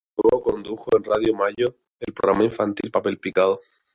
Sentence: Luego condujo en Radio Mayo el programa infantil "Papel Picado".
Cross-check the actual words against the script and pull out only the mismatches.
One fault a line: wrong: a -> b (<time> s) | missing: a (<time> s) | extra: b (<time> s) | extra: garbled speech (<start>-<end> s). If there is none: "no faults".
no faults